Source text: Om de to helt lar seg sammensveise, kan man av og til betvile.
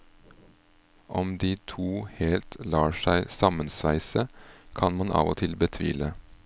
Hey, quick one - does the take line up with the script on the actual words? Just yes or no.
yes